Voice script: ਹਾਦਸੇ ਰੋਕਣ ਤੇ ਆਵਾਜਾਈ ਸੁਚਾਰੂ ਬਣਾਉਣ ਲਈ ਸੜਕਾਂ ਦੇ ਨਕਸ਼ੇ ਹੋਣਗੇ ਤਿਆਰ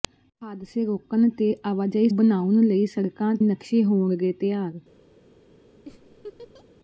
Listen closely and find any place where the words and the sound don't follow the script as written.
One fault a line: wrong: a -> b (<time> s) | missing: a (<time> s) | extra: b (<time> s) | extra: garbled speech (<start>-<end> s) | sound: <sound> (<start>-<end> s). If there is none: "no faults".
missing: ਸੁਚਾਰੂ (2.1 s)
missing: ਦੇ (3.3 s)
sound: laugh (5.9-6.7 s)